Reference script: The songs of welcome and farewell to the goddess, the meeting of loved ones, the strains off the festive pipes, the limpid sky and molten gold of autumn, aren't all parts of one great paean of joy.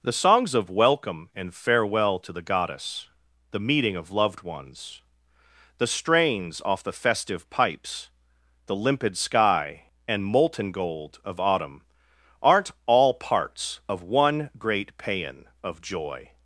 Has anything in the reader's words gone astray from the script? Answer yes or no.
no